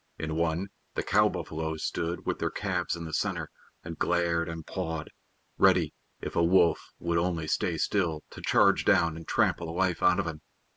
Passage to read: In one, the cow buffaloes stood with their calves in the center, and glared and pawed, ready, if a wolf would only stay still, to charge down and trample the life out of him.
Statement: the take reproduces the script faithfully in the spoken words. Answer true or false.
true